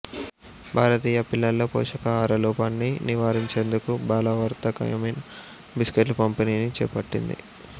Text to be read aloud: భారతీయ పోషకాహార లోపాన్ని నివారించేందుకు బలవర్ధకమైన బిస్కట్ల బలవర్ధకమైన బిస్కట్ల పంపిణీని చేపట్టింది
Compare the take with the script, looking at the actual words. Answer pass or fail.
fail